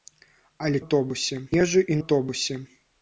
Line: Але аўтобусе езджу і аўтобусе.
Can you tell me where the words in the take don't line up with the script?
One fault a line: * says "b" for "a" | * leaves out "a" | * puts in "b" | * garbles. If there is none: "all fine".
all fine